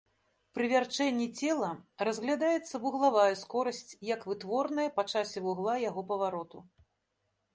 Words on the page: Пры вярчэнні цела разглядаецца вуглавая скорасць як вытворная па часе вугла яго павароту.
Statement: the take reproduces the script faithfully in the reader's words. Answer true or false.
true